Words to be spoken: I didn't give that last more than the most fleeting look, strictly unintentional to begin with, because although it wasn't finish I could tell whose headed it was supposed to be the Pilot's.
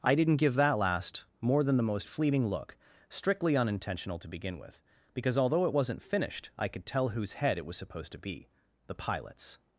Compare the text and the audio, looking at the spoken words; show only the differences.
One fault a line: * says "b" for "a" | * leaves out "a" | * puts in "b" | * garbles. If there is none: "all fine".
* says "finished" for "finish"
* says "head" for "headed"